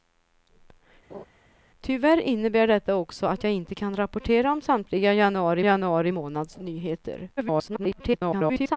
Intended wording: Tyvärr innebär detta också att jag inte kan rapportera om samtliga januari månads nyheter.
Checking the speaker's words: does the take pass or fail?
fail